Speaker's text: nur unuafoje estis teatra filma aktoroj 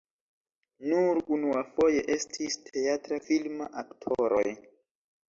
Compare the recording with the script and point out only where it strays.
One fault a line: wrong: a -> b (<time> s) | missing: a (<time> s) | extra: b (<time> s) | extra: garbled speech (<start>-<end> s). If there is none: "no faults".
no faults